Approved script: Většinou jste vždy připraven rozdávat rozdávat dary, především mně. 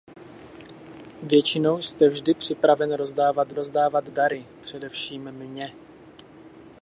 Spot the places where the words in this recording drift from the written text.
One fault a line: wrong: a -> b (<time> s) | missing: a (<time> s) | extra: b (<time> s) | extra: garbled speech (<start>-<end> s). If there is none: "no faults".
no faults